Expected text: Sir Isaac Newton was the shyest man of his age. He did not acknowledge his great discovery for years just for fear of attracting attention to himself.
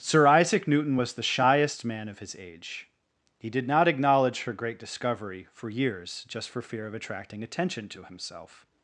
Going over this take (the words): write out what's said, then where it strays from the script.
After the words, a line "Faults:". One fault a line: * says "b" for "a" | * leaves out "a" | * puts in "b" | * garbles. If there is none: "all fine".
Sir Isaac Newton was the shyest man of his age. He did not acknowledge her great discovery for years just for fear of attracting attention to himself.
Faults:
* says "her" for "his"